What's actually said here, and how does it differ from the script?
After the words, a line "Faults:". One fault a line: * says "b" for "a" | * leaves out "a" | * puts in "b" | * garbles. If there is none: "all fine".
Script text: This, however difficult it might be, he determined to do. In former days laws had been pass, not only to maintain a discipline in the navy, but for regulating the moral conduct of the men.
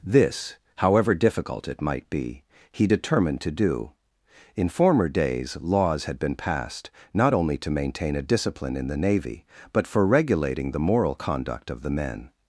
This, however difficult it might be, he determined to do. In former days laws had been passed, not only to maintain a discipline in the navy, but for regulating the moral conduct of the men.
Faults:
* says "passed" for "pass"